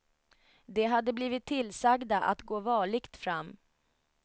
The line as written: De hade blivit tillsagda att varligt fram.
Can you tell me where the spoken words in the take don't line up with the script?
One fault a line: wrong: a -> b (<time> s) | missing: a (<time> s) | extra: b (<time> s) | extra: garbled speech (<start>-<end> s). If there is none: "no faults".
extra: gå (2.4 s)